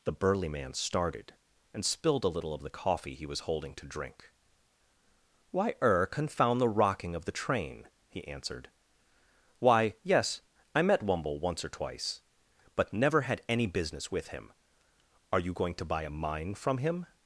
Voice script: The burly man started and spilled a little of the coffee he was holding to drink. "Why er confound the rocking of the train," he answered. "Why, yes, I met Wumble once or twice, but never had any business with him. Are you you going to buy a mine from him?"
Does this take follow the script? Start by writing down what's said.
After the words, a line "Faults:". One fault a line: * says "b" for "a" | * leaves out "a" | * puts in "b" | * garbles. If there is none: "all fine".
The burly man started and spilled a little of the coffee he was holding to drink. "Why er confound the rocking of the train," he answered. "Why, yes, I met Wumble once or twice, but never had any business with him. Are you going to buy a mine from him?"
Faults:
* leaves out "you"